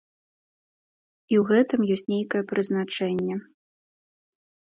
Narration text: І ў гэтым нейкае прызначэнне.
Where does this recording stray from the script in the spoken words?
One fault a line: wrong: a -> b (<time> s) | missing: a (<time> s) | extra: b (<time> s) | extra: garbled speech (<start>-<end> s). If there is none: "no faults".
extra: ёсць (2.0 s)